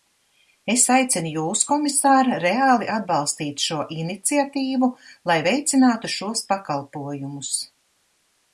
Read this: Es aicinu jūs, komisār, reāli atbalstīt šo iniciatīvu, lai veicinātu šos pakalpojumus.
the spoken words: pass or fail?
pass